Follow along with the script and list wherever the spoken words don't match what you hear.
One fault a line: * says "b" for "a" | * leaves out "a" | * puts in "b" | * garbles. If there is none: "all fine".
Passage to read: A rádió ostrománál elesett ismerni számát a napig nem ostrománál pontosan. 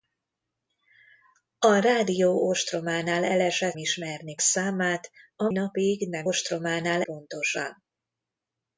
all fine